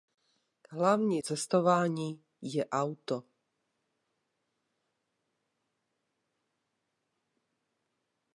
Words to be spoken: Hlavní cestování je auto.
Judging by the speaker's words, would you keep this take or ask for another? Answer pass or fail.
pass